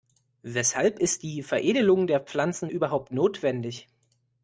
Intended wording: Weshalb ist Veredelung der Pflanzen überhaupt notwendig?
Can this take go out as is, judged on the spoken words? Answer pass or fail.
fail